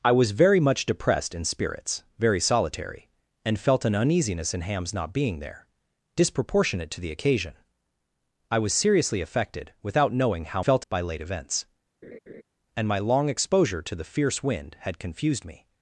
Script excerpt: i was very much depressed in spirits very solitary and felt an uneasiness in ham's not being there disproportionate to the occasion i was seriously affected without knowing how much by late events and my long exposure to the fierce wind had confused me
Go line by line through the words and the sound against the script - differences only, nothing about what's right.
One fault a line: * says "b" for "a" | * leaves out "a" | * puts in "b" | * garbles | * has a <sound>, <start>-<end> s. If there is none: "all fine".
* says "felt" for "much"
* has a laugh, 12.0-12.4 s